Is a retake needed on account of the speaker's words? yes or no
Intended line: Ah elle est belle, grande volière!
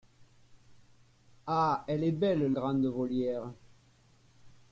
no